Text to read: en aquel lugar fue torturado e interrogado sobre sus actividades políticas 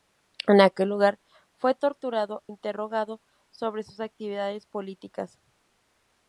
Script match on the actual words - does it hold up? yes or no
no